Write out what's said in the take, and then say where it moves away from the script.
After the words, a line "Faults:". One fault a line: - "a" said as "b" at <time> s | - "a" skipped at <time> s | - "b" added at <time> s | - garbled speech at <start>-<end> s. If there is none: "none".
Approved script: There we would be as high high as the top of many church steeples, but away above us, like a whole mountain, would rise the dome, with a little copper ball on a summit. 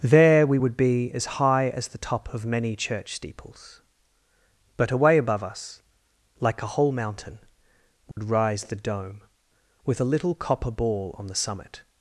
There we would be as high as the top of many church steeples, but away above us, like a whole mountain, would rise the dome, with a little copper ball on the summit.
Faults:
- "high" skipped at 1.7 s
- "a" said as "the" at 11.2 s